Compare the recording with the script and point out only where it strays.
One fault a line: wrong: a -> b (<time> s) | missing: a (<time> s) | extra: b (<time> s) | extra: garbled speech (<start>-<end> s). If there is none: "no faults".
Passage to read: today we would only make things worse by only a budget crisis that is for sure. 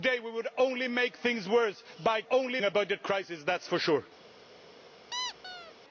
no faults